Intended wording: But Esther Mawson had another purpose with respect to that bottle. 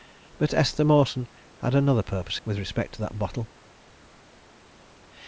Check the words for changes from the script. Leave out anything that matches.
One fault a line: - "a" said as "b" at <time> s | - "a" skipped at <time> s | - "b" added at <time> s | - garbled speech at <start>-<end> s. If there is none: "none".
none